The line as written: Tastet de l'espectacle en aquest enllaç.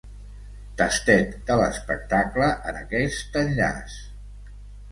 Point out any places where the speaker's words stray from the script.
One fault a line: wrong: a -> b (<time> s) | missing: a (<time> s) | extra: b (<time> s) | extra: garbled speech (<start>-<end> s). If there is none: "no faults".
no faults